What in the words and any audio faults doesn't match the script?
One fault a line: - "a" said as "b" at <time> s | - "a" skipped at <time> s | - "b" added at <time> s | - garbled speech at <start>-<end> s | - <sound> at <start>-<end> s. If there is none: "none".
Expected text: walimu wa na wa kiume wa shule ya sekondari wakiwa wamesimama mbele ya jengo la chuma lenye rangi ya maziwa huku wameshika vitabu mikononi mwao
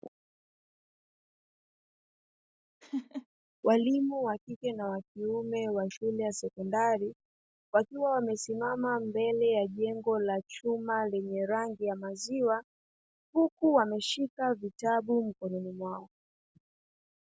- laugh at 2.8-3.3 s
- "kike" added at 4.4 s